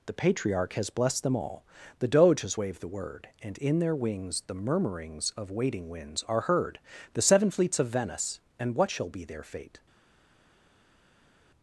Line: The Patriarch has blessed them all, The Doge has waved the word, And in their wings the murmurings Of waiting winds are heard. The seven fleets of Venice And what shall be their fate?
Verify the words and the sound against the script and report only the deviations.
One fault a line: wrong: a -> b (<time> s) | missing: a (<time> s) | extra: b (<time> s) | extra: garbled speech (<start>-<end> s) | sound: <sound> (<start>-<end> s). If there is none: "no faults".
no faults